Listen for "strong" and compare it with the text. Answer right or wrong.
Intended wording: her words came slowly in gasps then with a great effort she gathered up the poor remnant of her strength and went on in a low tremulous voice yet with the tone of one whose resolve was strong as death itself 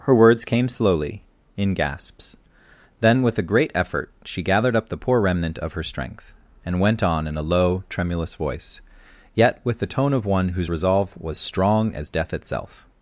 right